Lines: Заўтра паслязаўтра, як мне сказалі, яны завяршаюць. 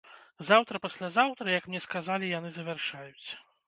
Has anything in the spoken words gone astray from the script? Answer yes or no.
no